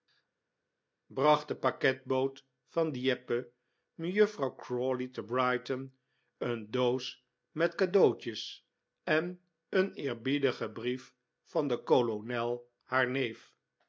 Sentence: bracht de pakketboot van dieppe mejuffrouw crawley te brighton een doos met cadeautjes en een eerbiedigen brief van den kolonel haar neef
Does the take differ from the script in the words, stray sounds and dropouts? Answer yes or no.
no